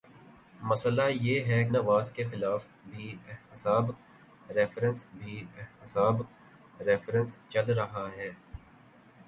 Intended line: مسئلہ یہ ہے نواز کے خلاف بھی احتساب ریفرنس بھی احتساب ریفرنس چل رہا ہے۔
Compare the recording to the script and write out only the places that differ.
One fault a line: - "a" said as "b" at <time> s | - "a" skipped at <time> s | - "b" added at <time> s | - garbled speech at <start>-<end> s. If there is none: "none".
none